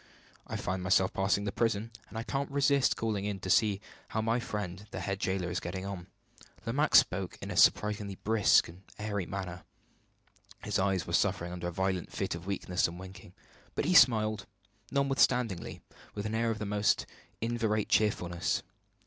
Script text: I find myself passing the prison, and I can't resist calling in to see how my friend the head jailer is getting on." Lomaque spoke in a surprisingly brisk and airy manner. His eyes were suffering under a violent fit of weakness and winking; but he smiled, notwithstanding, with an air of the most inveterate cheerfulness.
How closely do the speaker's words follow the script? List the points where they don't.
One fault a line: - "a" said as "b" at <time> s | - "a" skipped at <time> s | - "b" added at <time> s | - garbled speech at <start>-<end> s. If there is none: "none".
none